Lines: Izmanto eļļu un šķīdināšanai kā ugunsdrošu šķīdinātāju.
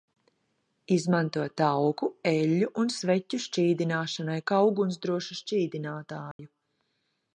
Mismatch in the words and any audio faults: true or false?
true